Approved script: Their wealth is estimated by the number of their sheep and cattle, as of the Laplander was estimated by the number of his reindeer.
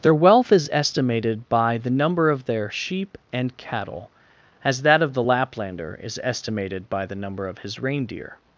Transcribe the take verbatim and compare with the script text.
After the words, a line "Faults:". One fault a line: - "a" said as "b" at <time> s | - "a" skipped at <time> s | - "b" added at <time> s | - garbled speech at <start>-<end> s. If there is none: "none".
Their wealth is estimated by the number of their sheep and cattle, as that of the Laplander is estimated by the number of his reindeer.
Faults:
- "that" added at 4.8 s
- "was" said as "is" at 6.0 s